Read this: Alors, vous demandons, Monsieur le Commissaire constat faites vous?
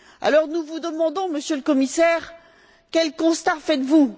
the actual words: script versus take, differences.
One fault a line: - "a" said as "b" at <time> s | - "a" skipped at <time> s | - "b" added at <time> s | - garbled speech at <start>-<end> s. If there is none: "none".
- "nous" added at 0.5 s
- "quel" added at 2.9 s